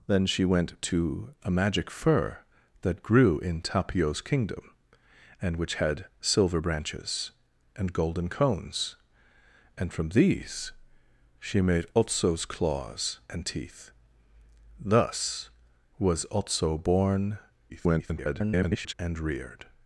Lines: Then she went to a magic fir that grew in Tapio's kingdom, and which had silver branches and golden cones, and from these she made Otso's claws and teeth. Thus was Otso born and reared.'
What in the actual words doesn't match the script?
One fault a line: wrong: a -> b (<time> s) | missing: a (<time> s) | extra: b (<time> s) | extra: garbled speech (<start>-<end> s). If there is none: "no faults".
extra: garbled speech (17.7-18.9 s)